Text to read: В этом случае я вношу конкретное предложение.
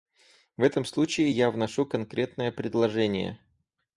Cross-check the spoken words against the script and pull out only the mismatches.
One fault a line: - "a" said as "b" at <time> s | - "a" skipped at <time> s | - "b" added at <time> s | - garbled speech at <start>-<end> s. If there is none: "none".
none